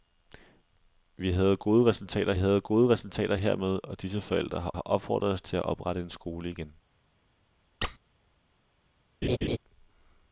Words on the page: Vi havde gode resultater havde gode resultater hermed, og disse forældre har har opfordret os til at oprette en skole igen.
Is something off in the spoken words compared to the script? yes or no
no